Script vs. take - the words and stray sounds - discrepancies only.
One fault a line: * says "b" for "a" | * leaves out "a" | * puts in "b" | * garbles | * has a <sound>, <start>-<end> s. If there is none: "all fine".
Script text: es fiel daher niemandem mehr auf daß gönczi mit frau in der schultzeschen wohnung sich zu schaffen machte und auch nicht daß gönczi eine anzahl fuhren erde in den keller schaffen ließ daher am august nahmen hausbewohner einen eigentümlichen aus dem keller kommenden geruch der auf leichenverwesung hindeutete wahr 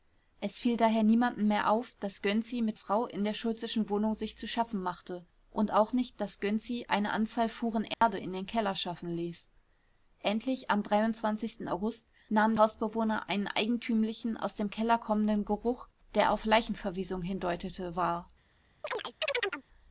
* has a dropout, 7.9-8.0 s
* says "endlich" for "daher"
* has a chirp, 18.8-19.6 s